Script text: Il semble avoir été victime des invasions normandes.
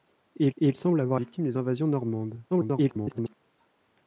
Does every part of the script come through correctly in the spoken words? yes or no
no